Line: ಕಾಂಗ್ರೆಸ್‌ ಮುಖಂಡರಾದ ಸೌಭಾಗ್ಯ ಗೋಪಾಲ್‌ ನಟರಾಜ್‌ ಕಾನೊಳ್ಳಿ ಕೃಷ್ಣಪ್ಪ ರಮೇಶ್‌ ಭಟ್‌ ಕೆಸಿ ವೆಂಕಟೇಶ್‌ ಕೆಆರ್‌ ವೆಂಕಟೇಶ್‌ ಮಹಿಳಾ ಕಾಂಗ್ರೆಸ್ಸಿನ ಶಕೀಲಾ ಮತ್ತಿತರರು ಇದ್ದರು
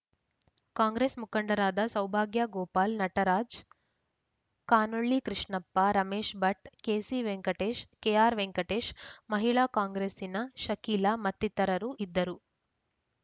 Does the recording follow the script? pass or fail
pass